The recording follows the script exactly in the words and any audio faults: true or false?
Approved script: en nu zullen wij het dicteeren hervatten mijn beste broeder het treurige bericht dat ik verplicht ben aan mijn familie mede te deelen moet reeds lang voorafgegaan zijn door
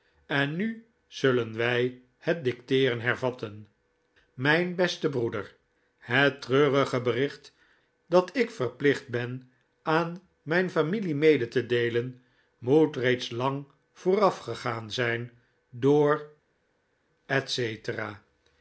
true